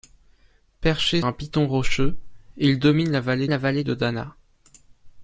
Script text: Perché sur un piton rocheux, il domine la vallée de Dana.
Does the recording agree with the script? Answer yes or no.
no